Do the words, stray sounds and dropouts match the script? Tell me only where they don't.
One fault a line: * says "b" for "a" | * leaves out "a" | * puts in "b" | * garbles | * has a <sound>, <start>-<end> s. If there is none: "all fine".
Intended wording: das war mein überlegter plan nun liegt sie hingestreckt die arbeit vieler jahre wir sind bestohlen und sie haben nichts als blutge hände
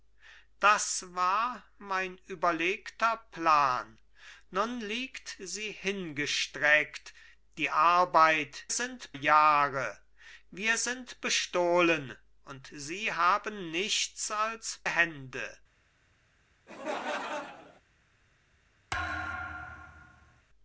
* says "sind" for "vieler"
* leaves out "blutge"
* has a laugh, 16.7-17.8 s
* has a thud, 18.9-20.4 s